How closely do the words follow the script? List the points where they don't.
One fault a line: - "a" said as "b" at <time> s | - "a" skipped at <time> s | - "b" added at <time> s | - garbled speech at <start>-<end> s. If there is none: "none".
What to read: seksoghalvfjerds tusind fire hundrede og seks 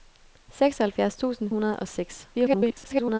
- "fire" skipped at 1.5 s
- garbled speech at 2.3-3.2 s